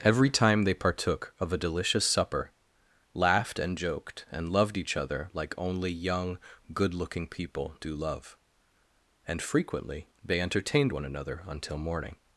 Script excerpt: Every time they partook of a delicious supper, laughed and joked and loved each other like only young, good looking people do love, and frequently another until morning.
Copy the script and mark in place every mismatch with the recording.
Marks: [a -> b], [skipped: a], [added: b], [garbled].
Every time they partook of a delicious supper, laughed and joked and loved each other like only young, good looking people do love, and frequently [added: they entertained one] another until morning.